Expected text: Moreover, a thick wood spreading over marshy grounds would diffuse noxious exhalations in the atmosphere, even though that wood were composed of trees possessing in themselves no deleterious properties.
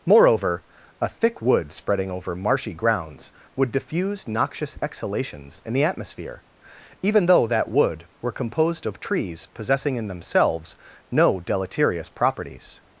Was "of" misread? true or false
false